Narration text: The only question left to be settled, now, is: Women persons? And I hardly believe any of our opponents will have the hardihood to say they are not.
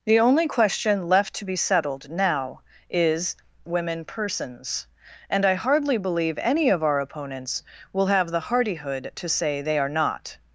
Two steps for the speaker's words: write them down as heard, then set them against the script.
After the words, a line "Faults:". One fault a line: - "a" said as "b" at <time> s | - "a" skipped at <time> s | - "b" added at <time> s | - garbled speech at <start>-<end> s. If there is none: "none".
The only question left to be settled, now, is: Women persons? And I hardly believe any of our opponents will have the hardihood to say they are not.
Faults:
none